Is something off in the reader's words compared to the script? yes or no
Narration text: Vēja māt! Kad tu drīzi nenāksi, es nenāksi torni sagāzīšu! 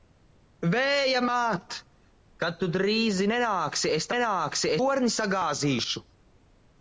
no